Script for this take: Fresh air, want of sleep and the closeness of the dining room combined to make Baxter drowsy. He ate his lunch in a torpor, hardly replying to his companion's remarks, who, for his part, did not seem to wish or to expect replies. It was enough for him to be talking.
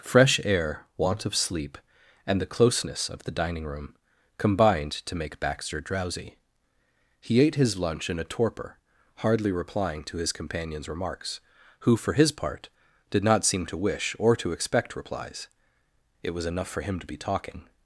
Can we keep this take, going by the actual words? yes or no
yes